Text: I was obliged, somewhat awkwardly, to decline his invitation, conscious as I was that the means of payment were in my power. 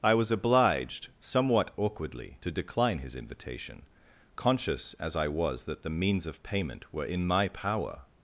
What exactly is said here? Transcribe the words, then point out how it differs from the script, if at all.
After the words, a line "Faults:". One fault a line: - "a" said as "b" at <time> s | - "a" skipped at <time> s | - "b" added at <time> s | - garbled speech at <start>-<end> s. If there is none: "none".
I was obliged, somewhat awkwardly, to decline his invitation, conscious as I was that the means of payment were in my power.
Faults:
none